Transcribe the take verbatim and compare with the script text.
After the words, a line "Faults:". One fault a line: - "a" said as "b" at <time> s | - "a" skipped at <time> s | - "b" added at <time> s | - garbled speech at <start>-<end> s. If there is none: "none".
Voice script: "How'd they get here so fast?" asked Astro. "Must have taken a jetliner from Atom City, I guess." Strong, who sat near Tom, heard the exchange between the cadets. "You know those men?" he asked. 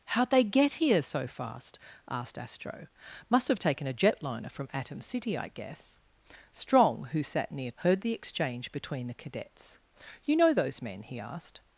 "How'd they get here so fast?" asked Astro. "Must have taken a jetliner from Atom City, I guess." Strong, who sat near Heard the exchange between the cadets. "You know those men?" he asked.
Faults:
- "Tom" skipped at 7.7 s